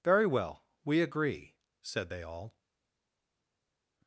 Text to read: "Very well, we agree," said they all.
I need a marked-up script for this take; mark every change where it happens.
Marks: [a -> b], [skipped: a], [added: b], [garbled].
"Very well, we agree," said they all.